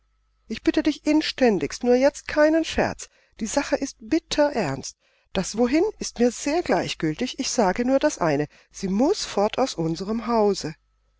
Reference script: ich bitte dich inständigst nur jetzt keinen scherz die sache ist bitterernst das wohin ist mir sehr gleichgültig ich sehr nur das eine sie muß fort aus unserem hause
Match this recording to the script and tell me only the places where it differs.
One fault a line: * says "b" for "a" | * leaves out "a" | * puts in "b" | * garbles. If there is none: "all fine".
* says "sage" for "sehr"